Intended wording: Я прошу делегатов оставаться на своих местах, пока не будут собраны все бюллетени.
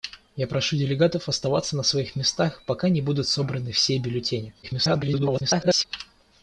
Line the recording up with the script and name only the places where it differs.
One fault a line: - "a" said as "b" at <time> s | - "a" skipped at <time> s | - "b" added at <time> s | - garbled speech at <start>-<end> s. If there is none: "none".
- garbled speech at 4.6-5.8 s